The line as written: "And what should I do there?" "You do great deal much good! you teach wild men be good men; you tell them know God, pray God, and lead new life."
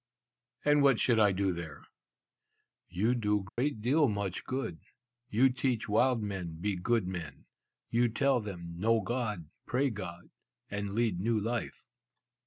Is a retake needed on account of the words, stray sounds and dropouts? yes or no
yes